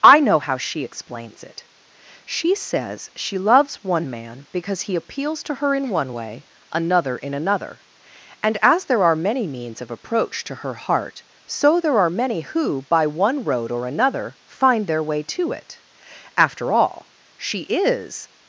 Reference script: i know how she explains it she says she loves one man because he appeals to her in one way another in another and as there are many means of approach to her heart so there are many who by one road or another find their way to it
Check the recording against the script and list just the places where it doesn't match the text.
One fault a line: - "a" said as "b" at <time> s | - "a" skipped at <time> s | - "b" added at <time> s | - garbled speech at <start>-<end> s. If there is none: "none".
- "after all she is" added at 16.3 s